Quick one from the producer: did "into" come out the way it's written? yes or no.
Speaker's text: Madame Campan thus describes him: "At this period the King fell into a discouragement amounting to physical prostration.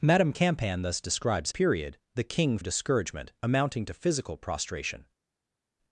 no